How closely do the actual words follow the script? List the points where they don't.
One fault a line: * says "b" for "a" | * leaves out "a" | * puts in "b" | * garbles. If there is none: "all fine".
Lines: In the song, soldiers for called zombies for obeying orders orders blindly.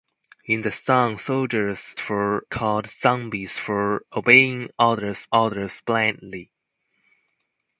all fine